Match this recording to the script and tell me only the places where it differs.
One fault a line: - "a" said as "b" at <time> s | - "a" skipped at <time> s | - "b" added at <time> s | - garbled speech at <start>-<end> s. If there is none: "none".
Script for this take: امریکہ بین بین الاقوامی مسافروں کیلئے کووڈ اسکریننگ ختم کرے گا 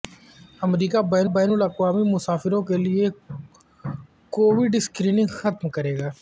none